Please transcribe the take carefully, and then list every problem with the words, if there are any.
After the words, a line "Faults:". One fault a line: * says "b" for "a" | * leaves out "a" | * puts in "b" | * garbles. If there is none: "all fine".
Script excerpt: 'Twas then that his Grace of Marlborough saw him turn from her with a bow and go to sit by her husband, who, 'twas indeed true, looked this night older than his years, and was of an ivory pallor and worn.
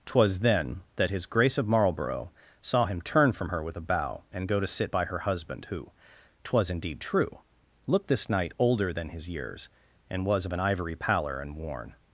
'Twas then that his Grace of Marlborough saw him turn from her with a bow and go to sit by her husband, who, 'twas indeed true, looked this night older than his years, and was of an ivory pallor and worn.
Faults:
all fine